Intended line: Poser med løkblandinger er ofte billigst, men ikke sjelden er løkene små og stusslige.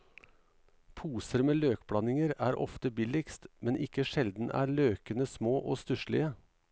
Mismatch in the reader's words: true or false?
false